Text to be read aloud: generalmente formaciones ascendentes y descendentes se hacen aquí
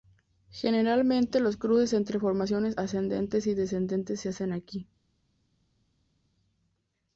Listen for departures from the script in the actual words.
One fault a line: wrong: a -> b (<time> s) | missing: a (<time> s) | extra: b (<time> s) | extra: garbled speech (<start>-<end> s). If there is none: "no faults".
extra: los cruces entre (1.4 s)